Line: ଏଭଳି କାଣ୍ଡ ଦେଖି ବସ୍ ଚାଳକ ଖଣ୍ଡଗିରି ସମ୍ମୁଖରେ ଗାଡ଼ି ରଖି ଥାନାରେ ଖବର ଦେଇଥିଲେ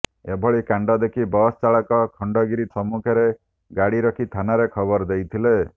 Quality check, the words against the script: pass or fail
pass